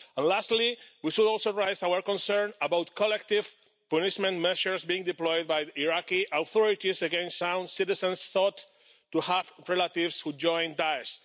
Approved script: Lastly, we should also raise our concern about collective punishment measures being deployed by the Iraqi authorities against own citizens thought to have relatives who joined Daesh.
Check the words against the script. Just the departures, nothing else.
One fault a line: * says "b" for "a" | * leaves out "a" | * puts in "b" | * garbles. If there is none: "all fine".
all fine